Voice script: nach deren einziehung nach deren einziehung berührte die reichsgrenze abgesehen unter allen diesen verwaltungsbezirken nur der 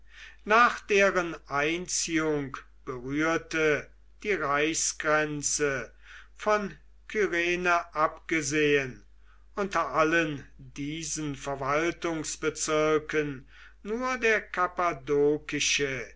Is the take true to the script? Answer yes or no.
no